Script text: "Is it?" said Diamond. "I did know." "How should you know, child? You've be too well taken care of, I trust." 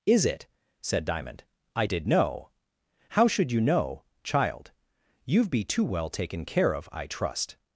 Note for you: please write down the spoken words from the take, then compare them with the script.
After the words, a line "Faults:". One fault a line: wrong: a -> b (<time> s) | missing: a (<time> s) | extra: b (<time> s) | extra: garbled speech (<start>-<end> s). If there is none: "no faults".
"Is it?" said Diamond. "I did know." "How should you know, child? You've be too well taken care of, I trust."
Faults:
no faults